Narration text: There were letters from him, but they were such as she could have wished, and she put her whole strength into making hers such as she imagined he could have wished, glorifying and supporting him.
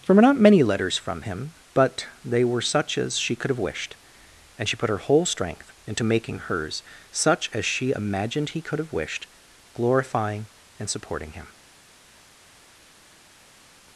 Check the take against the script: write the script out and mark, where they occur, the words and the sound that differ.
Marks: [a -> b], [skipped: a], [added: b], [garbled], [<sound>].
There were [added: not many] letters from him, but they were such as she could have wished, and she put her whole strength into making hers such as she imagined he could have wished, glorifying and supporting him.